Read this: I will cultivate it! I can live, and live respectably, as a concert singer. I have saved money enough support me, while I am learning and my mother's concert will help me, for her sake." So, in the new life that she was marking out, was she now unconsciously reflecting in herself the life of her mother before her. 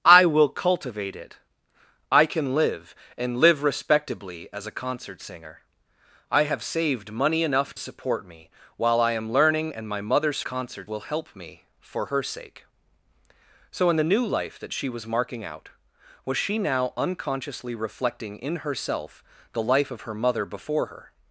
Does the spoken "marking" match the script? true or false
true